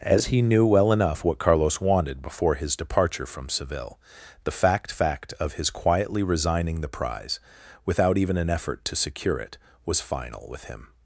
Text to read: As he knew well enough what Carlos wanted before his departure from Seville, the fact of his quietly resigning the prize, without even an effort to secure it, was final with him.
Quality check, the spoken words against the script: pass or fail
fail